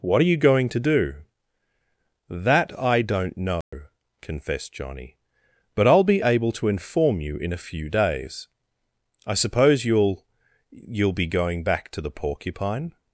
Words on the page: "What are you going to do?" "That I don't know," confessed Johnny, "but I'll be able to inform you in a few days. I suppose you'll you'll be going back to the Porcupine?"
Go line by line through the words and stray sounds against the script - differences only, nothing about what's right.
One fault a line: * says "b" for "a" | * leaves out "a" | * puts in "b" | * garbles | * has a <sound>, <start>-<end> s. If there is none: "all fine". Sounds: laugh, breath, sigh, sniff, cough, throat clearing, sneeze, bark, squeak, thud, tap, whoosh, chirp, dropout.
* has a dropout, 3.6-3.7 s